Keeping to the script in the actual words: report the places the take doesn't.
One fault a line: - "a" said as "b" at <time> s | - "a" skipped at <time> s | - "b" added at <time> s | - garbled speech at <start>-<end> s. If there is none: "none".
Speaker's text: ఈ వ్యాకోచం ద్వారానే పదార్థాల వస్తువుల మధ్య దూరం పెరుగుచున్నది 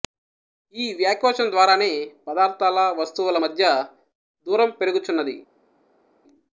none